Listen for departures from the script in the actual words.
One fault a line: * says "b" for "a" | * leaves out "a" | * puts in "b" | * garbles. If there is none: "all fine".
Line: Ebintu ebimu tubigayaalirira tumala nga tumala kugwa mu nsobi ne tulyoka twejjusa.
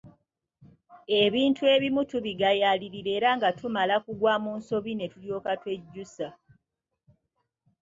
* says "era" for "tumala"